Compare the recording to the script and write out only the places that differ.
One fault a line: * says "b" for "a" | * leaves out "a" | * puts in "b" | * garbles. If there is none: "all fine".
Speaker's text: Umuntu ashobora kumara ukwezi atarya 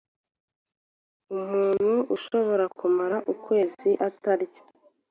all fine